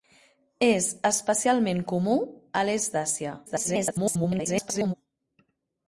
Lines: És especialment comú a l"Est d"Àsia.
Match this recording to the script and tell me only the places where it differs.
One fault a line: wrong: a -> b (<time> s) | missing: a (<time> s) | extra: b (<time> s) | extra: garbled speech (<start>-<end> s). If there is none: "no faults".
extra: garbled speech (3.5-4.9 s)